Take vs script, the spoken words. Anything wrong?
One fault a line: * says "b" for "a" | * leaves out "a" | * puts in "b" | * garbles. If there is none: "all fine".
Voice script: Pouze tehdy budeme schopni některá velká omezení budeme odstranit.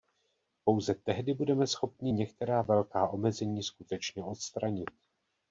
* says "skutečně" for "budeme"